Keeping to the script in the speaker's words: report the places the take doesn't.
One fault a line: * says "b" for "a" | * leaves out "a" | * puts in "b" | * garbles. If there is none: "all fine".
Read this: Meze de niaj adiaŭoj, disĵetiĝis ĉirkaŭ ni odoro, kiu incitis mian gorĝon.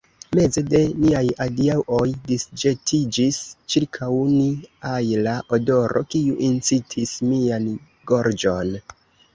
* puts in "ajla"